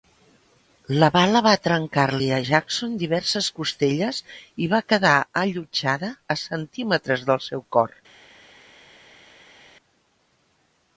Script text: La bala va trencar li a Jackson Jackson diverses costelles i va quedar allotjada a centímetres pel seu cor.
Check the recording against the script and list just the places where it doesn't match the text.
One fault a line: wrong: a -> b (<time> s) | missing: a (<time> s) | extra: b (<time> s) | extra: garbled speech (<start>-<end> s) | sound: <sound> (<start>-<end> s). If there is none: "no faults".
missing: Jackson (3.0 s)
wrong: pel -> del (7.3 s)